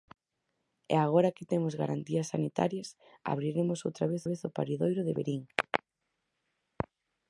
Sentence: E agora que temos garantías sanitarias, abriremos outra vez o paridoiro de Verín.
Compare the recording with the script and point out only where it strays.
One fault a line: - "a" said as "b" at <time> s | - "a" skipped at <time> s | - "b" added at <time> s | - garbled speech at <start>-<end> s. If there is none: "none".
- "vez" added at 4.3 s